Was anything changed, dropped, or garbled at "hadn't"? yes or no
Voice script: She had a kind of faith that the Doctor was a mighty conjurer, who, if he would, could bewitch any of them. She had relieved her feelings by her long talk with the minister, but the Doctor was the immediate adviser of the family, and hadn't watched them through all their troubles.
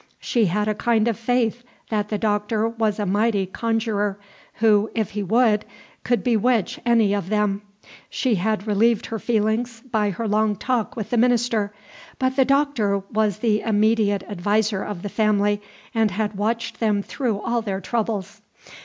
yes